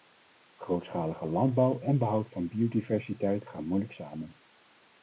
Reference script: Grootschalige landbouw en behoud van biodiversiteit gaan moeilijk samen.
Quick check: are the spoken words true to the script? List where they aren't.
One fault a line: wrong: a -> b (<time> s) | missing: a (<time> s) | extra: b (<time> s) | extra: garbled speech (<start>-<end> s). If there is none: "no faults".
no faults